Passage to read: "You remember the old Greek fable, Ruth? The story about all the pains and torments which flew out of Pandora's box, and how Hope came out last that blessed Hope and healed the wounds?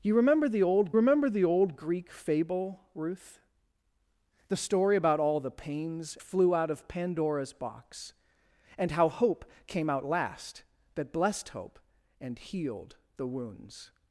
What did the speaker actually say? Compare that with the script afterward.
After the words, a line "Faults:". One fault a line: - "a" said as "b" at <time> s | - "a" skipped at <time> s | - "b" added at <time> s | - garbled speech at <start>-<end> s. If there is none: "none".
"You remember the old remember the old Greek fable, Ruth? The story about all the pains flew out of Pandora's box, and how Hope came out last that blessed Hope and healed the wounds?
Faults:
- "remember the old" added at 0.9 s
- "and torments which" skipped at 6.2 s